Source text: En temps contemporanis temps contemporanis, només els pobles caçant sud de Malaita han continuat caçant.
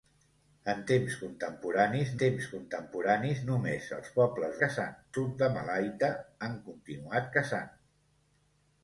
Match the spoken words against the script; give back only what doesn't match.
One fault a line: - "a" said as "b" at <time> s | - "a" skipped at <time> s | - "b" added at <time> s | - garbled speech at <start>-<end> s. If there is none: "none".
none